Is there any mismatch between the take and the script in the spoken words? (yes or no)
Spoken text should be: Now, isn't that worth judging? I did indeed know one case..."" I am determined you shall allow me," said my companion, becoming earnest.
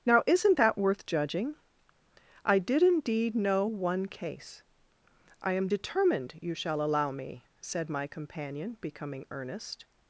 no